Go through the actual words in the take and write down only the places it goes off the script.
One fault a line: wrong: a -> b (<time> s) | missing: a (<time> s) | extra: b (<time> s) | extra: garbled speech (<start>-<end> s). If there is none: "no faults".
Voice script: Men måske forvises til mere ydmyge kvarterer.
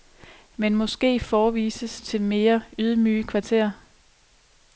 no faults